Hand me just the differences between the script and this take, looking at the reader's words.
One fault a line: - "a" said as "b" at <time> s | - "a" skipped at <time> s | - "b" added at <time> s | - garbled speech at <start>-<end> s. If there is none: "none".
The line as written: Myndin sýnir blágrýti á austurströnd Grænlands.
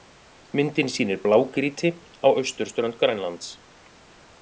none